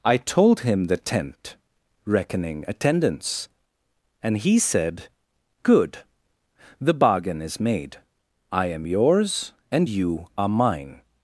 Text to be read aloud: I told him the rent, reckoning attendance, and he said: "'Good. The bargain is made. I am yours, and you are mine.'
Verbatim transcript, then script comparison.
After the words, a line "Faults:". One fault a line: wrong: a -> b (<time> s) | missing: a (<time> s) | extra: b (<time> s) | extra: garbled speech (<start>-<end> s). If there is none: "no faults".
I told him the tent, reckoning attendance, and he said: "'Good. The bargain is made. I am yours, and you are mine.'
Faults:
wrong: rent -> tent (1.0 s)